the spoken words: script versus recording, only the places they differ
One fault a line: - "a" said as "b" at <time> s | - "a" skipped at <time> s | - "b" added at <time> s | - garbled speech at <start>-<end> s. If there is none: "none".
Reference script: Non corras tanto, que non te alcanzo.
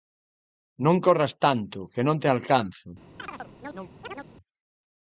none